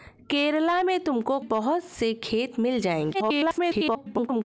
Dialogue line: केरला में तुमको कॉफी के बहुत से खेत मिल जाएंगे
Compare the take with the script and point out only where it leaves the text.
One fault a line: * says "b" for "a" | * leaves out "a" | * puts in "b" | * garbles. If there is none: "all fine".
* leaves out "कॉफी के"
* garbles